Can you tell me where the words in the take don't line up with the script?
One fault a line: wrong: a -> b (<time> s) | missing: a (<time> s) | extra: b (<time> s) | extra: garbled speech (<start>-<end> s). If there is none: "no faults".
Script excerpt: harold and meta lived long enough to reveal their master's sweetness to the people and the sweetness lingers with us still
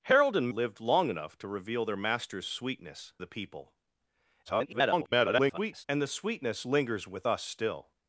missing: meta (0.5 s)
missing: to (3.1 s)
extra: garbled speech (4.5-5.9 s)